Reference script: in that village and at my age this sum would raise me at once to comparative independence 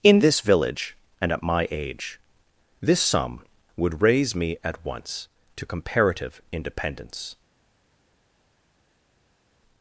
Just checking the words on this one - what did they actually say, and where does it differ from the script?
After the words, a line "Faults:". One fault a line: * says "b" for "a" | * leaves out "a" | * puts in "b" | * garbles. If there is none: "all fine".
in this village and at my age this sum would raise me at once to comparative independence
Faults:
* says "this" for "that"